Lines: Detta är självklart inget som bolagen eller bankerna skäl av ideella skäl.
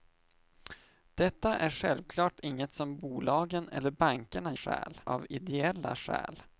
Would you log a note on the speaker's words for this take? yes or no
no